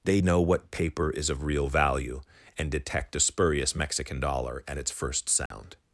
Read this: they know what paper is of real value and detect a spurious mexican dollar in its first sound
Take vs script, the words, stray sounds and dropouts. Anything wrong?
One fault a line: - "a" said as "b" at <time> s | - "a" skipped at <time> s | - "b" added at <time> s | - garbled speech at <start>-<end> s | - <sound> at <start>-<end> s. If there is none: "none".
- "in" said as "at" at 4.7 s
- dropout at 5.5-5.5 s